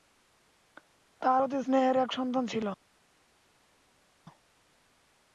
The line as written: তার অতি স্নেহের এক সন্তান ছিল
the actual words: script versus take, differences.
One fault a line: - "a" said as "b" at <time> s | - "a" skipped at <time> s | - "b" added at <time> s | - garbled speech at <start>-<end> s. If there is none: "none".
none